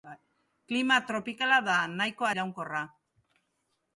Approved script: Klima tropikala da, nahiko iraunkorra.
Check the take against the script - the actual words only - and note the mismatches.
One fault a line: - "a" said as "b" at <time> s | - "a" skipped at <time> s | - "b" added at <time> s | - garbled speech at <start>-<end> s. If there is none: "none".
none